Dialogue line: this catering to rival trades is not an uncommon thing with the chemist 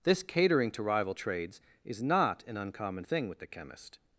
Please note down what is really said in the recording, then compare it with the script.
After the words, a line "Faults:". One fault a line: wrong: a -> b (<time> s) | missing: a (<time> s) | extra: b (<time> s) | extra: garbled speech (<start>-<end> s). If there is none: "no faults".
this catering to rival trades is not an uncommon thing with the chemist
Faults:
no faults